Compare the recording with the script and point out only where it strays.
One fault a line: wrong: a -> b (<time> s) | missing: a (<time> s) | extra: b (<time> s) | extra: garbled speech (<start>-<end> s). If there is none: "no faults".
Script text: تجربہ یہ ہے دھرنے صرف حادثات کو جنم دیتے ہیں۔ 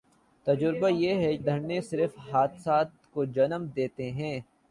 no faults